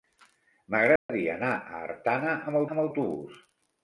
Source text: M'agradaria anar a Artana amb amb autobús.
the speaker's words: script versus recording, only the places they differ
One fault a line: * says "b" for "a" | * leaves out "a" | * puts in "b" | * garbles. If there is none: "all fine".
all fine